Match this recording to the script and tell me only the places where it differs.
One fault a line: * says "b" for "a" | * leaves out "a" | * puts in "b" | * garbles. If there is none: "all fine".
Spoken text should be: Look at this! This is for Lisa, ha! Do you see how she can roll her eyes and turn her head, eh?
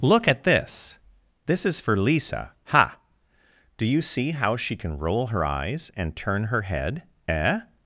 all fine